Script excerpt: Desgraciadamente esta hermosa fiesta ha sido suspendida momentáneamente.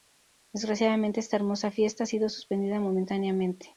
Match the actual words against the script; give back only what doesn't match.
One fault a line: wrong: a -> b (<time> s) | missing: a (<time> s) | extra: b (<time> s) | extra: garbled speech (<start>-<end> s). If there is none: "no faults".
no faults